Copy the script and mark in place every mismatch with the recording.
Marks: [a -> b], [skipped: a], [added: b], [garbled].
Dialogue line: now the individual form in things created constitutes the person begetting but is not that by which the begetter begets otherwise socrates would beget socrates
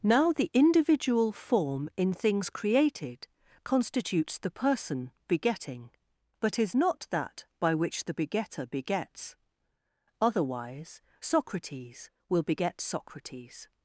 now the individual form in things created constitutes the person begetting but is not that by which the begetter begets otherwise socrates [would -> will] beget socrates